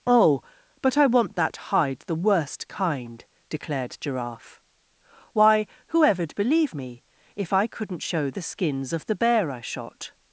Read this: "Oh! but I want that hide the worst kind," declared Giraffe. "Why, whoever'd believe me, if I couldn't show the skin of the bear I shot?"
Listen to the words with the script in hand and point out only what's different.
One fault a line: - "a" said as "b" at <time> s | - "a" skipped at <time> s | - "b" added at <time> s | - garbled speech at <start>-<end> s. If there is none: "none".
- "skin" said as "skins" at 8.4 s